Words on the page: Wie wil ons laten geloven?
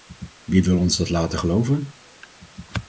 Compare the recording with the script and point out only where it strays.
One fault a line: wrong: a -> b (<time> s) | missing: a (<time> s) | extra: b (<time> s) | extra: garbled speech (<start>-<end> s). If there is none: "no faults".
extra: dat (1.0 s)